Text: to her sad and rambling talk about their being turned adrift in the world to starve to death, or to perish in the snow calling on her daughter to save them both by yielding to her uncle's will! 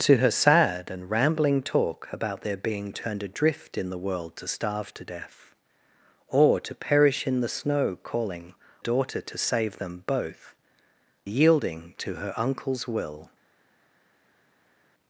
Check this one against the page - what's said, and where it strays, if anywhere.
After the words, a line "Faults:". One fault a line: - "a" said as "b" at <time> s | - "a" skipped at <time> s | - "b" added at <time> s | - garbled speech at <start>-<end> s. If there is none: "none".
to her sad and rambling talk about their being turned adrift in the world to starve to death, or to perish in the snow calling daughter to save them both yielding to her uncle's will!
Faults:
- "on her" skipped at 8.6 s
- "by" skipped at 10.5 s